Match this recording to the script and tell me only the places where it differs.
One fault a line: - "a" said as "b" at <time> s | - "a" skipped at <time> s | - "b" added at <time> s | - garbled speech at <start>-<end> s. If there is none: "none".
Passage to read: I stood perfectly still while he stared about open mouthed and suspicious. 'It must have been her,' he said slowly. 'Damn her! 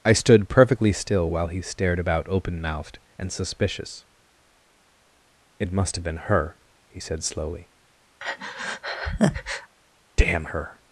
none